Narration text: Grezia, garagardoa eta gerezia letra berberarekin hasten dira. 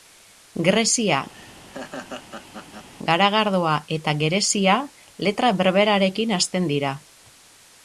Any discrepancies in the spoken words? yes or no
no